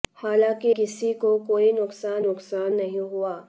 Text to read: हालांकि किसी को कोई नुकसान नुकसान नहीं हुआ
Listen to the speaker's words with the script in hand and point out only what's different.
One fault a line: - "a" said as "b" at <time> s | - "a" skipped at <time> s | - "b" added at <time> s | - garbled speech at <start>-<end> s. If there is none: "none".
none